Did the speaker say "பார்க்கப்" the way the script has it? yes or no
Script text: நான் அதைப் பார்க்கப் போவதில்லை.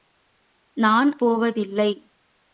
no